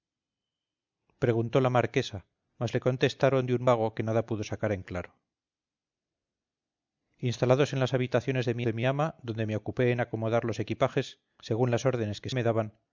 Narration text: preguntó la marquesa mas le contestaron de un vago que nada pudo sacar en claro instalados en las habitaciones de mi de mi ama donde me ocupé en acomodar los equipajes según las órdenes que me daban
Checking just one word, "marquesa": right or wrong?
right